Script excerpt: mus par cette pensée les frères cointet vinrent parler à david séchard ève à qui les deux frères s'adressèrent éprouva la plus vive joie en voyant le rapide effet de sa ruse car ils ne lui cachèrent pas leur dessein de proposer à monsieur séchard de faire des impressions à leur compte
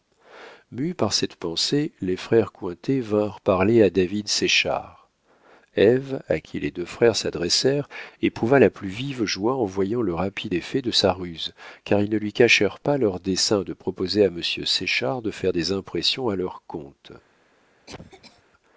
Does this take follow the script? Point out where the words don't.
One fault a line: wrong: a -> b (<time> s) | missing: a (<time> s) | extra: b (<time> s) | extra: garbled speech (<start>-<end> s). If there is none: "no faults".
no faults